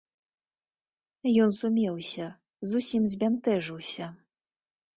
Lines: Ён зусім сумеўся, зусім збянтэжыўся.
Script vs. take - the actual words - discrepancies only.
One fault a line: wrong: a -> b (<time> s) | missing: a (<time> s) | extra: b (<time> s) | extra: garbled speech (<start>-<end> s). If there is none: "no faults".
missing: зусім (1.5 s)